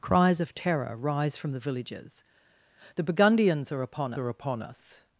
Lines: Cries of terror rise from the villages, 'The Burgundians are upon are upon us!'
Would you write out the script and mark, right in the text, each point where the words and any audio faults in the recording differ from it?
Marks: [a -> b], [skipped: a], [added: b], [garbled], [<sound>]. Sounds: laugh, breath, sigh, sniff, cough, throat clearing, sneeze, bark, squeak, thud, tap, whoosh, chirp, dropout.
Cries of terror rise from the villages, 'The Burgundians are upon are upon us!'